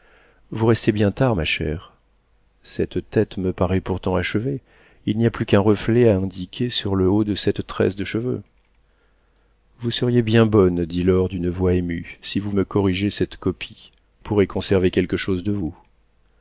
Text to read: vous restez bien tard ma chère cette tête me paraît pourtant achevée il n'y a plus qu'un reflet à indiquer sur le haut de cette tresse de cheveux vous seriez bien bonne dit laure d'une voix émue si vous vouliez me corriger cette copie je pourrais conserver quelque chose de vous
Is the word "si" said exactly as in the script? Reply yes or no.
yes